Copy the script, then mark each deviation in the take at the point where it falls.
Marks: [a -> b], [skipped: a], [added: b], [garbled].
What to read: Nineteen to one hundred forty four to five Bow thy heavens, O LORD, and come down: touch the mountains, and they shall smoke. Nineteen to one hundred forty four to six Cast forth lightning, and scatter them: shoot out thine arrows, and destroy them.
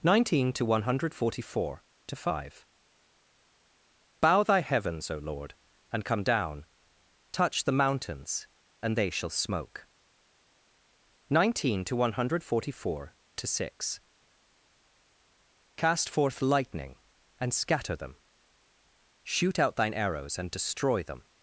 Nineteen to one hundred forty four to five Bow thy heavens, O LORD, and come down: touch the mountains, and they shall smoke. Nineteen to one hundred forty four to six Cast forth lightning, and scatter them: shoot out thine arrows, and destroy them.